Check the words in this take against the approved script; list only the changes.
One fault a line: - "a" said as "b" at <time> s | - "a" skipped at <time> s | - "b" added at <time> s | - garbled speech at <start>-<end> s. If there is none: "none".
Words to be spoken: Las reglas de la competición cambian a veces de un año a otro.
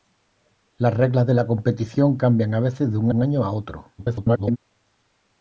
- "un" added at 3.1 s
- garbled speech at 4.0-4.6 s